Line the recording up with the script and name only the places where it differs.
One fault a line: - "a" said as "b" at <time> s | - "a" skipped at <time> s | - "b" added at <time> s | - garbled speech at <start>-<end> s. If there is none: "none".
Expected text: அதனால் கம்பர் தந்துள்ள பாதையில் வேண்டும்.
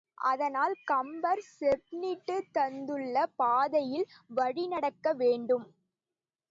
- "செப்பனிட்டுத்" added at 1.5 s
- "வழிநடக்க" added at 4.3 s